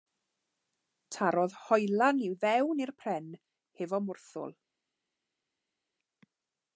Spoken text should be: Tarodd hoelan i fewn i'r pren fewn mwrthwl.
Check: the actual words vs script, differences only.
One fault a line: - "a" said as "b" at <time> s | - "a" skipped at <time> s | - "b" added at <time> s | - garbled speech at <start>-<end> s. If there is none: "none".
- "fewn" said as "hefo" at 3.8 s